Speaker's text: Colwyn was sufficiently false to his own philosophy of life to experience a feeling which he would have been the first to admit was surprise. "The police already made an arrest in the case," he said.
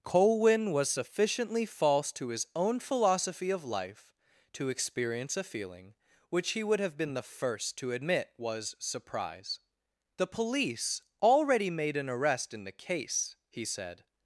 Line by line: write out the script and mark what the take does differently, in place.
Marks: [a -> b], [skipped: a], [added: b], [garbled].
Colwyn was sufficiently false to his own philosophy of life to experience a feeling which he would have been the first to admit was surprise. "The police already made an arrest in the case," he said.